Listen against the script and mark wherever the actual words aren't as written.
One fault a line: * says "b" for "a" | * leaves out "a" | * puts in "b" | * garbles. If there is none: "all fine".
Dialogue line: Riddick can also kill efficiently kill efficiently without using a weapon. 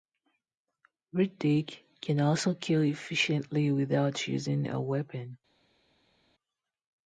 * leaves out "kill efficiently"